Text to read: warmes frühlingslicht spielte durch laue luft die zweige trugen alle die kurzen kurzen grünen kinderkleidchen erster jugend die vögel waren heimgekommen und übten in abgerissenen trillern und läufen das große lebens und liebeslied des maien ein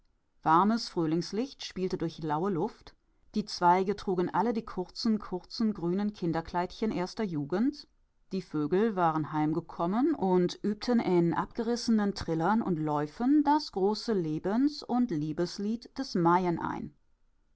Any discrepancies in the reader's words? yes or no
no